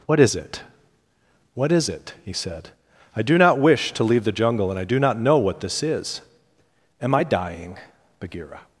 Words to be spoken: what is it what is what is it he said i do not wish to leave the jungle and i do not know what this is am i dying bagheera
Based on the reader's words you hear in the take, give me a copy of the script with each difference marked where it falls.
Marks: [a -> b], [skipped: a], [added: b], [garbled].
what is it what is [skipped: what is] it he said i do not wish to leave the jungle and i do not know what this is am i dying bagheera